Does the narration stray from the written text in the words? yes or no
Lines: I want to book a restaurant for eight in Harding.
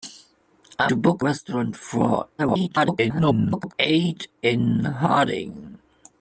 yes